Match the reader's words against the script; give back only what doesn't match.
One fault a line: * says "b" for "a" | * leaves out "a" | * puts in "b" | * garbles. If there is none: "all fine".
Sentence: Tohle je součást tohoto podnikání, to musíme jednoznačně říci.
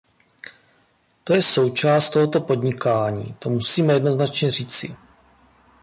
* says "To" for "Tohle"